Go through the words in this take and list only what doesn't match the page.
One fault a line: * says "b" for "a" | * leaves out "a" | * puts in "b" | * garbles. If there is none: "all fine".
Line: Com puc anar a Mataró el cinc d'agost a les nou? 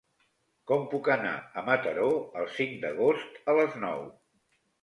all fine